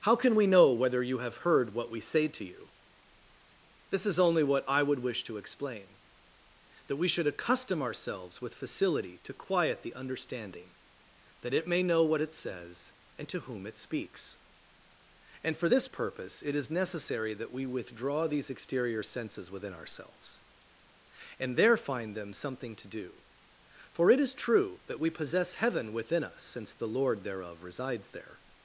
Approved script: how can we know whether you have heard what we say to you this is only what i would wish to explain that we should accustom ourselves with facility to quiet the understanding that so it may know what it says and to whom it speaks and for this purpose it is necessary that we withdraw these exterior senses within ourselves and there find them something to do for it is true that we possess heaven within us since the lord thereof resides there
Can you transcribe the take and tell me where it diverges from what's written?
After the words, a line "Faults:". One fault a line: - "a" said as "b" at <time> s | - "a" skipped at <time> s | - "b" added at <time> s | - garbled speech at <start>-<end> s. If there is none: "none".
how can we know whether you have heard what we say to you this is only what i would wish to explain that we should accustom ourselves with facility to quiet the understanding that it may know what it says and to whom it speaks and for this purpose it is necessary that we withdraw these exterior senses within ourselves and there find them something to do for it is true that we possess heaven within us since the lord thereof resides there
Faults:
- "so" skipped at 11.5 s